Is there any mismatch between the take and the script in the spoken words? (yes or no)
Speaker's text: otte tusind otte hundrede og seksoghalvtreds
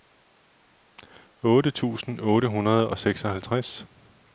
no